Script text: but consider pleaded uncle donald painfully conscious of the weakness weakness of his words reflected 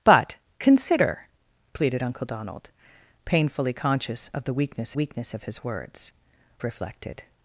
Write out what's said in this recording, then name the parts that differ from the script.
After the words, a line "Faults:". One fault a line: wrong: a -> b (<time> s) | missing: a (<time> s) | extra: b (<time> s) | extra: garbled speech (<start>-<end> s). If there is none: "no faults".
but consider pleaded uncle donald painfully conscious of the weakness weakness of his words reflected
Faults:
no faults